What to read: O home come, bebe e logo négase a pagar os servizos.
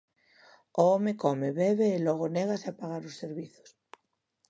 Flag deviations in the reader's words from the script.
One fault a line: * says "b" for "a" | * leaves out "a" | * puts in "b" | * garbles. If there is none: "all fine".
all fine